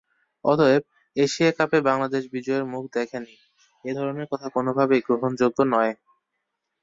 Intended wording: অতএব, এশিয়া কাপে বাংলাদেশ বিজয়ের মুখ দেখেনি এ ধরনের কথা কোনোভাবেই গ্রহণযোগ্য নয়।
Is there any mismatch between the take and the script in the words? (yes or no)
no